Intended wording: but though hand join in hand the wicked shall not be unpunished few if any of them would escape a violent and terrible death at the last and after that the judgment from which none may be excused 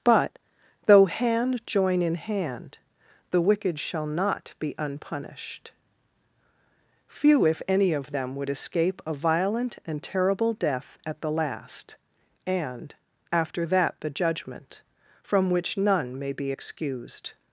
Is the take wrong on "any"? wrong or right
right